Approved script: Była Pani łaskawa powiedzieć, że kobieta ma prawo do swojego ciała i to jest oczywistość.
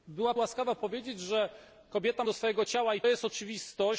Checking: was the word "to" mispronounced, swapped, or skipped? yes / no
yes